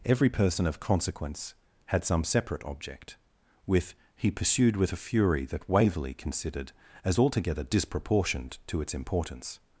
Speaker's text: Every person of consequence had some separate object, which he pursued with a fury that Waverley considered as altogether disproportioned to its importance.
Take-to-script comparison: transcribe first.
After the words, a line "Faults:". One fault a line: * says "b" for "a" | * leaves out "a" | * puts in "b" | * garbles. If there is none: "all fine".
Every person of consequence had some separate object, with he pursued with a fury that Waverley considered as altogether disproportioned to its importance.
Faults:
* says "with" for "which"